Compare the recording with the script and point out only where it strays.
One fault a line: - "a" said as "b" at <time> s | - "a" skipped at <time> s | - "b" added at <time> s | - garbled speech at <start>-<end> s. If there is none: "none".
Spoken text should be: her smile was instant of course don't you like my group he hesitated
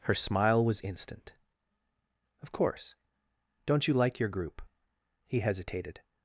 - "my" said as "your" at 4.2 s